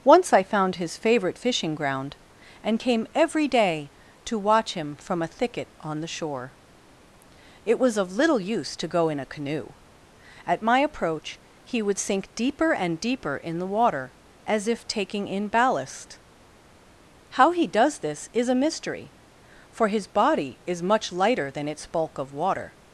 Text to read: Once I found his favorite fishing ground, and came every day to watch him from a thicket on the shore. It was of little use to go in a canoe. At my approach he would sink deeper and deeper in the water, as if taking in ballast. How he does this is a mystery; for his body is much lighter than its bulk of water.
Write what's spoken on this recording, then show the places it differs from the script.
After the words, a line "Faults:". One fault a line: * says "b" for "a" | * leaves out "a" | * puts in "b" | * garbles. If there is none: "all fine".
Once I found his favorite fishing ground, and came every day to watch him from a thicket on the shore. It was of little use to go in a canoe. At my approach he would sink deeper and deeper in the water, as if taking in ballast. How he does this is a mystery; for his body is much lighter than its bulk of water.
Faults:
all fine